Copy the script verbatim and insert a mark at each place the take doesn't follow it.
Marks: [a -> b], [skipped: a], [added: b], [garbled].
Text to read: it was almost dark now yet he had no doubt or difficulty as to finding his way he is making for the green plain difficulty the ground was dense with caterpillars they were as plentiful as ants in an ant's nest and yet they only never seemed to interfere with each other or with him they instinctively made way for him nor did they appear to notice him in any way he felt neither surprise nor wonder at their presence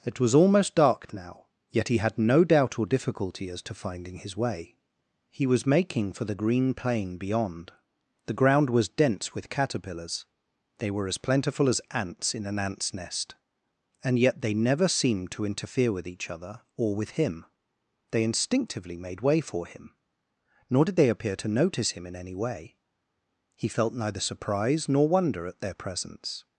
it was almost dark now yet he had no doubt or difficulty as to finding his way he [is -> was] making for the green plain [difficulty -> beyond] the ground was dense with caterpillars they were as plentiful as ants in an ant's nest and yet they [skipped: only] never seemed to interfere with each other or with him they instinctively made way for him nor did they appear to notice him in any way he felt neither surprise nor wonder at their presence